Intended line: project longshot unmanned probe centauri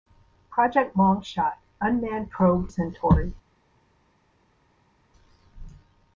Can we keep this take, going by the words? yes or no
yes